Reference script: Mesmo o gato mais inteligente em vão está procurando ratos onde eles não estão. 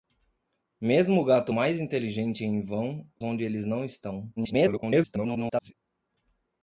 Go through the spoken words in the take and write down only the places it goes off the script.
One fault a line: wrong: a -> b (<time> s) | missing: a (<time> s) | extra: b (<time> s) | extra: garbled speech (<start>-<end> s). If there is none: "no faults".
missing: está procurando ratos (3.1 s)
extra: garbled speech (4.4-5.7 s)